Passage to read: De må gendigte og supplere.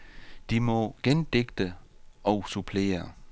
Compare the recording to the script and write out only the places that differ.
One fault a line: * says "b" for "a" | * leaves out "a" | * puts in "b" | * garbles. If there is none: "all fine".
all fine